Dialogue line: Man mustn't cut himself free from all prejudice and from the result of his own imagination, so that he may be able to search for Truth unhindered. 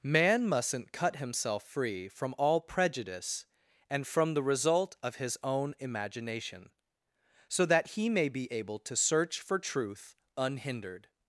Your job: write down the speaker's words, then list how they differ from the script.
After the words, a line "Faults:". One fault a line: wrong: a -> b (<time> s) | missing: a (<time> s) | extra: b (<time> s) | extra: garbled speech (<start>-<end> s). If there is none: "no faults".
Man mustn't cut himself free from all prejudice and from the result of his own imagination, so that he may be able to search for Truth unhindered.
Faults:
no faults